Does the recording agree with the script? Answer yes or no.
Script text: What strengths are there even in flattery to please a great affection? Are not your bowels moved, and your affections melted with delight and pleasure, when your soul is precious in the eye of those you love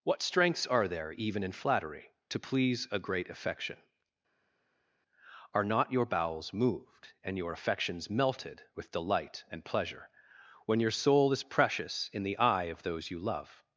yes